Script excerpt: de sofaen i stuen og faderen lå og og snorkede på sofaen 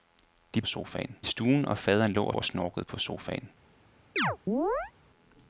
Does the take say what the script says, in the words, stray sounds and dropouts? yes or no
no